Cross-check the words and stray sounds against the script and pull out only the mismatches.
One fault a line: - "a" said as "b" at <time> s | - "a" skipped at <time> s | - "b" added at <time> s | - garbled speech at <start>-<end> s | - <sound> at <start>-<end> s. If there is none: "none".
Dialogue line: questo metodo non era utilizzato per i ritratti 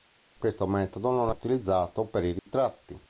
- "era" skipped at 1.4 s
- dropout at 2.4-2.5 s